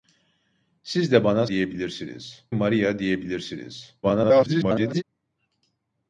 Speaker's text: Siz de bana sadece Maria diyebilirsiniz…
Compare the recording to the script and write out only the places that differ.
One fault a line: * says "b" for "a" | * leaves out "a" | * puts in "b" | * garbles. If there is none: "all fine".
* says "diyebilirsiniz" for "sadece"
* garbles